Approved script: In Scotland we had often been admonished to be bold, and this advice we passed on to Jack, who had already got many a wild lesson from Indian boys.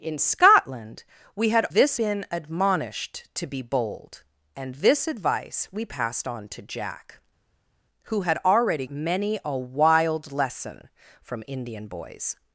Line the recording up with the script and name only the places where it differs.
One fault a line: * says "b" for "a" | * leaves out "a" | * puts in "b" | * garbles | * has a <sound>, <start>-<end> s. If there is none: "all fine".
* says "this" for "often"
* leaves out "got"